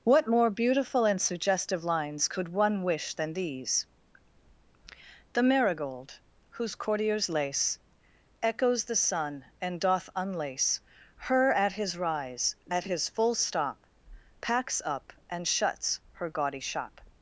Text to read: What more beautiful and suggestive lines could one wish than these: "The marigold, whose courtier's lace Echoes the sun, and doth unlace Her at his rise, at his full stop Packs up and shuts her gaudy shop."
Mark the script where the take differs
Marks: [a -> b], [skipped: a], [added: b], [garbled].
What more beautiful and suggestive lines could one wish than these: "The marigold, whose courtier's lace Echoes the sun, and doth unlace Her at his rise, at his full stop Packs up and shuts her gaudy shop."